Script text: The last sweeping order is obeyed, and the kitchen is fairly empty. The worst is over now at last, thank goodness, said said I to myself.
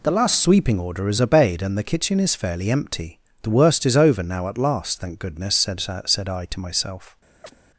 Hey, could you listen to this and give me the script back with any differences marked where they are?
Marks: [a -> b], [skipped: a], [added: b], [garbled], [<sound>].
The last sweeping order is obeyed, and the kitchen is fairly empty. The worst is over now at last, thank goodness, said said I to myself. [chirp]